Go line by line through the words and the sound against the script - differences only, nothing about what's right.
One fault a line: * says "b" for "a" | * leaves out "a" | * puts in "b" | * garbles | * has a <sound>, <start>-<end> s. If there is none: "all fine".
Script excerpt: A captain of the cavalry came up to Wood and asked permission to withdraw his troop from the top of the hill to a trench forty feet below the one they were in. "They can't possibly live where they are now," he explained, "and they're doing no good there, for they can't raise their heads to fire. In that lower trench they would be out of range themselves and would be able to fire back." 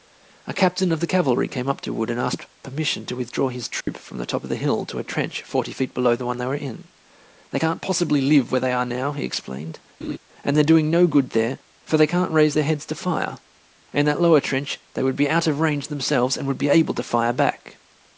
* has a dropout, 3.8-3.9 s
* has a laugh, 10.0-10.2 s